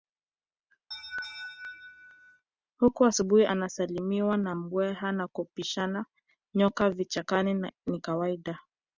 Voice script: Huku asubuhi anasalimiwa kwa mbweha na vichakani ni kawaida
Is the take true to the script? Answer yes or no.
no